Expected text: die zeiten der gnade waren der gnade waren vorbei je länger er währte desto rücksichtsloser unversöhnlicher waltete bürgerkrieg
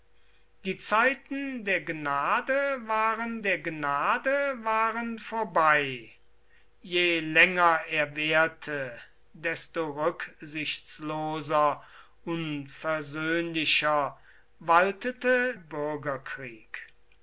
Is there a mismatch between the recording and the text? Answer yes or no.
no